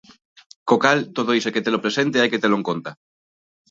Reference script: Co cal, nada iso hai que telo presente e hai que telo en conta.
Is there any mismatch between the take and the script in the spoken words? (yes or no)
yes